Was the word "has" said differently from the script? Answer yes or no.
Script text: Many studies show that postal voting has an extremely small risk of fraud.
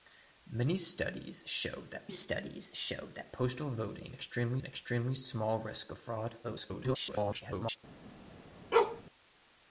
yes